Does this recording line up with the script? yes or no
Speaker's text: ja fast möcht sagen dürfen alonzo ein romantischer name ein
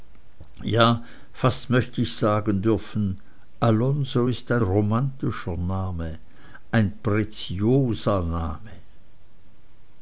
no